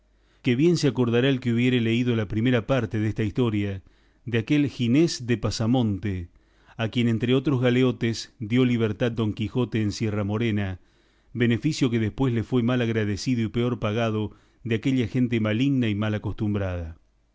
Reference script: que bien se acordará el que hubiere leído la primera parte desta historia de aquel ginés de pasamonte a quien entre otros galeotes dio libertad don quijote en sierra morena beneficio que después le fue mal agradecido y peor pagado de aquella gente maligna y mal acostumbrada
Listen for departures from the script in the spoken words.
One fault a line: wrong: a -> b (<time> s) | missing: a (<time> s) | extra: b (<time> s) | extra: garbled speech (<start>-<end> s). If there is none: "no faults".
no faults